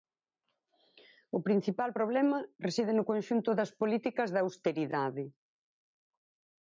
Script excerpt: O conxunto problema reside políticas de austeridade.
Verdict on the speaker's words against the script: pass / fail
fail